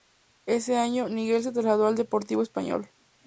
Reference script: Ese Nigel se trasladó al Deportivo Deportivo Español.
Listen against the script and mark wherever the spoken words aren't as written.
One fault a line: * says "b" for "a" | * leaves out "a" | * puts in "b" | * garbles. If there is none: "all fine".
* puts in "año"
* leaves out "Deportivo"